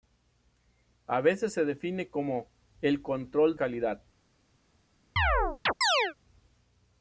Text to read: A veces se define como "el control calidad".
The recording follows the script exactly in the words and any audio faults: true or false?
false